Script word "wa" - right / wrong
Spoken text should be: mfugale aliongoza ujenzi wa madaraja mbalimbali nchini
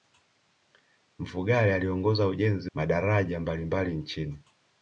wrong